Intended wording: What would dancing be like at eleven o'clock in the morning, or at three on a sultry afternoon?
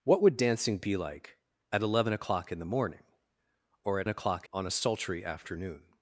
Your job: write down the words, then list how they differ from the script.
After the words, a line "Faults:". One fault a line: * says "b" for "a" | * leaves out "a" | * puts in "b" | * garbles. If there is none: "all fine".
What would dancing be like at eleven o'clock in the morning, or at o'clock on a sultry afternoon?
Faults:
* says "o'clock" for "three"